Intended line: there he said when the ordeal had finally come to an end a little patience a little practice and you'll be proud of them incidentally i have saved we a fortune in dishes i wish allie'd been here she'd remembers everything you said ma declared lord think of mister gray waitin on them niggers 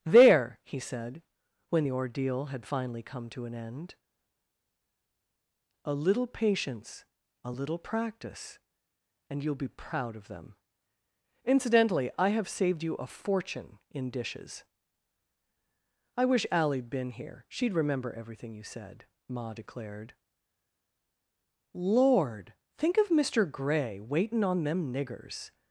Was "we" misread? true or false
true